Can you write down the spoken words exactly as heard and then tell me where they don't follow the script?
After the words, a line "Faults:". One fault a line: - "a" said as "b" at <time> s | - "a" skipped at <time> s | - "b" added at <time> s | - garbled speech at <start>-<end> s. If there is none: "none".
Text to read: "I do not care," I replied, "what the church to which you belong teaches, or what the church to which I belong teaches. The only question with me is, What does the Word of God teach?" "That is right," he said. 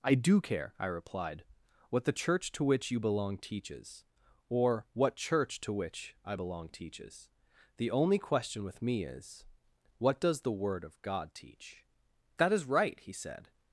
"I do care," I replied, "what the church to which you belong teaches, or what church to which I belong teaches. The only question with me is, What does the Word of God teach?" "That is right," he said.
Faults:
- "not" skipped at 0.4 s
- "the" skipped at 5.2 s